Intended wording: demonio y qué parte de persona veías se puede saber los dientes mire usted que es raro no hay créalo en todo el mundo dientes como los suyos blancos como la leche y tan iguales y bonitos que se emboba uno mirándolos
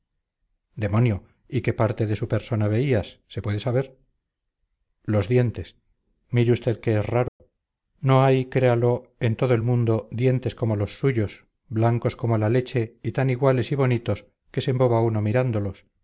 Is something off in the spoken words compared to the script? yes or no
yes